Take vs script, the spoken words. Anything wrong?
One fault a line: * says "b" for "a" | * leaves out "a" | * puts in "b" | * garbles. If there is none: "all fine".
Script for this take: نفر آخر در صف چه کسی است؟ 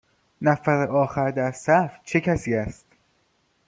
all fine